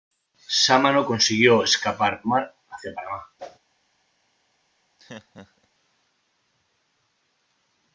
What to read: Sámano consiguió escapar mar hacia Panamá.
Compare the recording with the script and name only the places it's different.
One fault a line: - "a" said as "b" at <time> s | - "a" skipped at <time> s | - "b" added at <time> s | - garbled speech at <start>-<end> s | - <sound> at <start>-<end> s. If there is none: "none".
- whoosh at 3.4-3.6 s
- laugh at 5.0-5.7 s